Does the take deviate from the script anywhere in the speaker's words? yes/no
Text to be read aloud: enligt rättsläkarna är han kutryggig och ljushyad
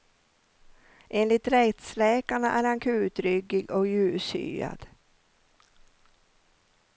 no